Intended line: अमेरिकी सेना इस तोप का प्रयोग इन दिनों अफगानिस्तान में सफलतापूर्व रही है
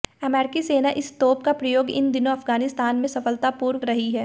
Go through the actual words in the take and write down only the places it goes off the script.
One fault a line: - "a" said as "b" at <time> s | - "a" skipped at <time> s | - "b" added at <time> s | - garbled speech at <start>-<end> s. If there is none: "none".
none